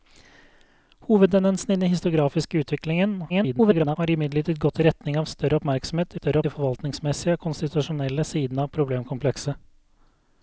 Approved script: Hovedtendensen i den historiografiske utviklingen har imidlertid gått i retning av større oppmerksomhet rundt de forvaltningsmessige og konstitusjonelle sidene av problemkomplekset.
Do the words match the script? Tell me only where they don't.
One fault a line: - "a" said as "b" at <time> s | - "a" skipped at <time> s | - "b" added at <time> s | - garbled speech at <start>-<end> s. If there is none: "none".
- garbled speech at 3.3-4.0 s
- "rundt" said as "større" at 6.2 s